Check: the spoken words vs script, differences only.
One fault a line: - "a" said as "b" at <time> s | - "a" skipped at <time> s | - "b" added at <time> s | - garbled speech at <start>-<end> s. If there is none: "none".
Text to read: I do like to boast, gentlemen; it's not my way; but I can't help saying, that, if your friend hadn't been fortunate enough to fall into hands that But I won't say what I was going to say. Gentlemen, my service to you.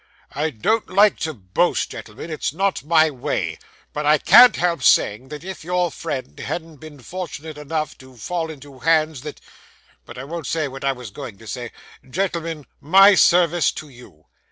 - "do" said as "don't" at 0.5 s